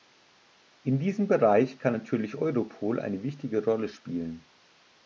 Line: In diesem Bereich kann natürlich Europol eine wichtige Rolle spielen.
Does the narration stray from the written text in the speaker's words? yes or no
no